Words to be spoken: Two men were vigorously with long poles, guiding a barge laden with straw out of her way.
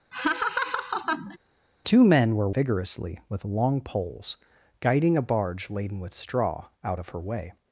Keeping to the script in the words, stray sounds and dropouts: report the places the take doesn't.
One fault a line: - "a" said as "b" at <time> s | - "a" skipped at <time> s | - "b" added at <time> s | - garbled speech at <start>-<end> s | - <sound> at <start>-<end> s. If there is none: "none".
- laugh at 0.1-1.4 s